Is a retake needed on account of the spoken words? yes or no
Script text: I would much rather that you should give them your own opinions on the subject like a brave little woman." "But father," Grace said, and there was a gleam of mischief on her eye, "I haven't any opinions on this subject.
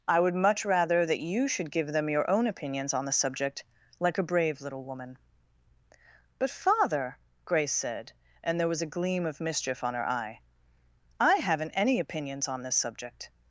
no